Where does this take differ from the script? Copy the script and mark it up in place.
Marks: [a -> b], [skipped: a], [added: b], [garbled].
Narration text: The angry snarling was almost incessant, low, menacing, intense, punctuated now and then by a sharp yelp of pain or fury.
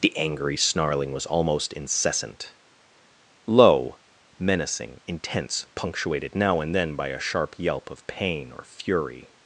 The angry snarling was almost incessant, low, menacing, intense, punctuated now and then by a sharp yelp of pain or fury.